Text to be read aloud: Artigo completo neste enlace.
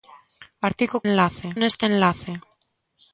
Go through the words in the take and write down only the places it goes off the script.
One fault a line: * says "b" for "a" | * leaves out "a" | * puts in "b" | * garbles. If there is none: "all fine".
* says "enlace" for "completo"